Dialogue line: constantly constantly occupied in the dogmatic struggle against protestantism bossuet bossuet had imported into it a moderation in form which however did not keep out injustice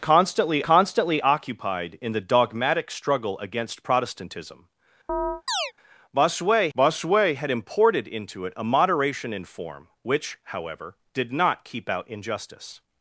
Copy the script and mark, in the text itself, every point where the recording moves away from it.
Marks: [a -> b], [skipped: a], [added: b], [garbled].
constantly constantly occupied in the dogmatic struggle against protestantism bossuet bossuet had imported into it a moderation in form which however did not keep out injustice